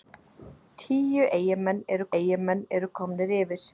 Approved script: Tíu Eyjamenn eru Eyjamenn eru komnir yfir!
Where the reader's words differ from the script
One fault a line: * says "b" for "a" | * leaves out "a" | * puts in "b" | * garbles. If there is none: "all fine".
all fine